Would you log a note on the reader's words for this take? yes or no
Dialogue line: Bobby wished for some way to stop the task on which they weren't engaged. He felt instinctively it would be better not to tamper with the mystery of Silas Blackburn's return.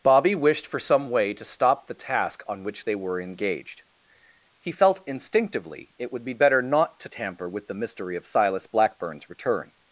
yes